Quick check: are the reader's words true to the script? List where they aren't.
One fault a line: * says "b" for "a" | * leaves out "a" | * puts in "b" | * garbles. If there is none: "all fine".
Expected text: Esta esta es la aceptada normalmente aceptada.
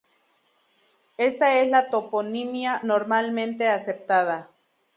* leaves out "esta"
* says "toponimia" for "aceptada"